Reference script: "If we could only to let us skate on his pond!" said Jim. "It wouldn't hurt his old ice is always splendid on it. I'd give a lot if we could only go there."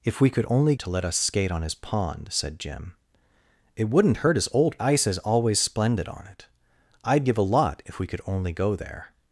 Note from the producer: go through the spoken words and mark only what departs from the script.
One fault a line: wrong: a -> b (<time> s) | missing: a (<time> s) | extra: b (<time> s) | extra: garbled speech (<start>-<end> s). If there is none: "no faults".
no faults